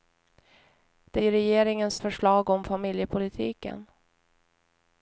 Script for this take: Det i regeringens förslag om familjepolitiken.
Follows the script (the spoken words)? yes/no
yes